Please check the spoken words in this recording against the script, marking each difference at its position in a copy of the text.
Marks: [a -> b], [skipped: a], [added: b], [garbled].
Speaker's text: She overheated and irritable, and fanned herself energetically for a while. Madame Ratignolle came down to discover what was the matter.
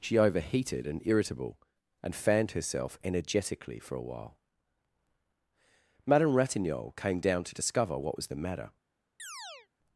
She overheated and irritable, and fanned herself energetically for a while. Madame Ratignolle came down to discover what was the matter.